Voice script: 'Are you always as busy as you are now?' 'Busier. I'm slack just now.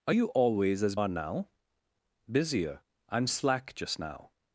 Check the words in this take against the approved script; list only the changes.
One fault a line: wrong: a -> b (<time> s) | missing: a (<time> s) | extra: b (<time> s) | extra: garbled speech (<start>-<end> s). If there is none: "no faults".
missing: busy as you (0.9 s)